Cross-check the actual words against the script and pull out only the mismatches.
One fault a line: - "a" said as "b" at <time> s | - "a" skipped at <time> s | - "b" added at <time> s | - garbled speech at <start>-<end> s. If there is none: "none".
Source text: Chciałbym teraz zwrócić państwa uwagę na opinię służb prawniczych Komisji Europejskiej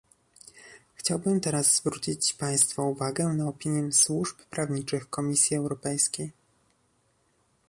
none